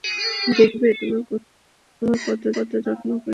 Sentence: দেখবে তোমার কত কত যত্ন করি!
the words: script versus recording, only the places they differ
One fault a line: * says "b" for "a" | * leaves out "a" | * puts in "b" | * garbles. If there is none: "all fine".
all fine